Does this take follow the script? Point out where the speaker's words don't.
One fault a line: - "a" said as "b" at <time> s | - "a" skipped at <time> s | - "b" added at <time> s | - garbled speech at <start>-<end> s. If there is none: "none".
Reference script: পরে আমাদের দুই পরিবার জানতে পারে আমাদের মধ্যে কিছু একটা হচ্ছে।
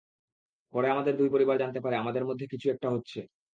none